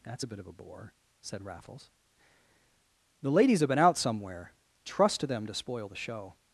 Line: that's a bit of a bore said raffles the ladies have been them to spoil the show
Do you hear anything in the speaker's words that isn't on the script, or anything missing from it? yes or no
yes